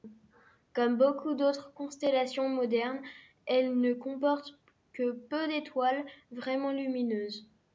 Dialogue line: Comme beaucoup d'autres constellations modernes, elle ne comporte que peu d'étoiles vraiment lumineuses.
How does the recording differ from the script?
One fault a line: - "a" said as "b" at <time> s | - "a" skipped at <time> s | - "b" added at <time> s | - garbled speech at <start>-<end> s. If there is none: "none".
none